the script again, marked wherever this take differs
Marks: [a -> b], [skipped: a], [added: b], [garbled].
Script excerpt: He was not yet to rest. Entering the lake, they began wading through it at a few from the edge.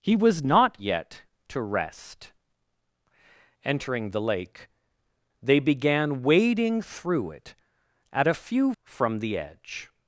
He was not yet to rest. Entering the lake, they began wading through it at a few from the edge.